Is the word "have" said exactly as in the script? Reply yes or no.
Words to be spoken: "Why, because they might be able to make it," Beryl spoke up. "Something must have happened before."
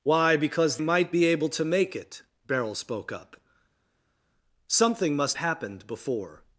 no